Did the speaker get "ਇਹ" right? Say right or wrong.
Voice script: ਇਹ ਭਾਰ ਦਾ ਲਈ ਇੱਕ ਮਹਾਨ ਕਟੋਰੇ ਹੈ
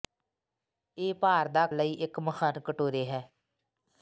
right